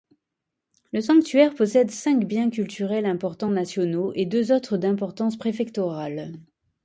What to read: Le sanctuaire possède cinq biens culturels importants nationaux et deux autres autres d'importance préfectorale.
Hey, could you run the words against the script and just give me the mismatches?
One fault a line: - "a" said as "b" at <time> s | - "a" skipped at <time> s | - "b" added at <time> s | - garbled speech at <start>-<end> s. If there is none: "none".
- "autres" skipped at 4.8 s